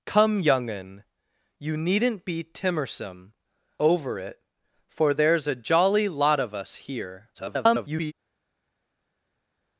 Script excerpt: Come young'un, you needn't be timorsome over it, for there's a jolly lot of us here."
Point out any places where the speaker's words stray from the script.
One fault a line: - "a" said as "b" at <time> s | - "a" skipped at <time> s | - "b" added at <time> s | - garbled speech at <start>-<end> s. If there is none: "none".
- garbled speech at 7.3-8.1 s